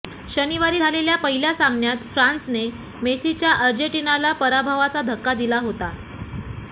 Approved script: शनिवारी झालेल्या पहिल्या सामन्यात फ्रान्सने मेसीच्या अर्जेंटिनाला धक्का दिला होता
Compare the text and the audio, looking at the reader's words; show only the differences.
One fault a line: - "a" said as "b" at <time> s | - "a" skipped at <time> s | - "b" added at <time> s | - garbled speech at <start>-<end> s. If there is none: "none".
- "पराभवाचा" added at 4.3 s